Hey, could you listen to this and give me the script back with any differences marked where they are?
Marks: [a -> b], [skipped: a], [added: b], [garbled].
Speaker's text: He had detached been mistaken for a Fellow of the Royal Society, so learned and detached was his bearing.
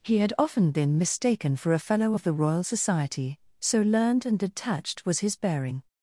He had [detached -> often] been mistaken for a Fellow of the Royal Society, so learned and detached was his bearing.